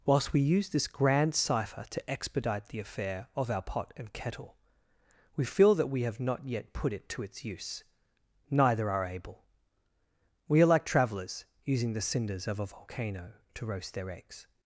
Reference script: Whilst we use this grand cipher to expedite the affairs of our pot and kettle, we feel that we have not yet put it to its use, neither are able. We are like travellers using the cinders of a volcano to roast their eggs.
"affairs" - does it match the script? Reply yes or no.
no